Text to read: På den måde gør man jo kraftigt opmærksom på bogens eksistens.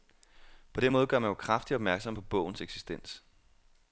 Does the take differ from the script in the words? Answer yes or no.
no